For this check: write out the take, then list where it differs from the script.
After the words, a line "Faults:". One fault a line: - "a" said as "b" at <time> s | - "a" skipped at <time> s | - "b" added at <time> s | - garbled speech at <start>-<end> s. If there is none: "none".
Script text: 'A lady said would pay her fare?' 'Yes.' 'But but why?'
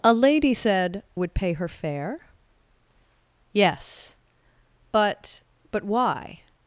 'A lady said would pay her fare?' 'Yes.' 'But but why?'
Faults:
none